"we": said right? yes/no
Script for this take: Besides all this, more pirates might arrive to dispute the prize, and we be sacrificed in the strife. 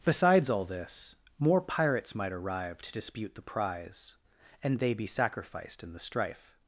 no